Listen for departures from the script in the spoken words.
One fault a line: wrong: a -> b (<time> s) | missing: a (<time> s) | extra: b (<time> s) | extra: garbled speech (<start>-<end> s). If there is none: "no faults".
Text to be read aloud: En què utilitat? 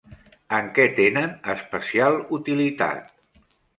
extra: tenen especial (1.0 s)